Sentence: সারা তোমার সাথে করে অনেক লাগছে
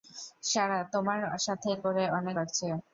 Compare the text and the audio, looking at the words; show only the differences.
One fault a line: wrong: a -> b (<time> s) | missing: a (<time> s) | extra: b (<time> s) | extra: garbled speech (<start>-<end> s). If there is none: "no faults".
no faults